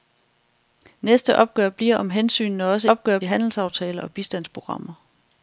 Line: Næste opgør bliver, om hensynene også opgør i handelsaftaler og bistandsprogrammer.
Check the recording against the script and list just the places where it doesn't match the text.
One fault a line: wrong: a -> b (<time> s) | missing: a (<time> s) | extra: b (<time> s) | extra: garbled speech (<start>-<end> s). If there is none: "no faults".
no faults